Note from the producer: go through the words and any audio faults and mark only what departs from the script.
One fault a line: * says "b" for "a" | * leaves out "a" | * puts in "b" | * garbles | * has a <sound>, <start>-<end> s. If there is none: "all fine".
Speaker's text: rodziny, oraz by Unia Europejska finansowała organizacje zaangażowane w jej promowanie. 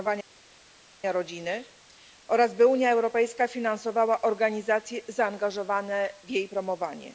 all fine